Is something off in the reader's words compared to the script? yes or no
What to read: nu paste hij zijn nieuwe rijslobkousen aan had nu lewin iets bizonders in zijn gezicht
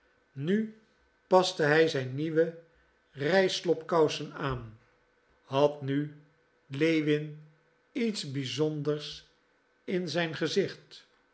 no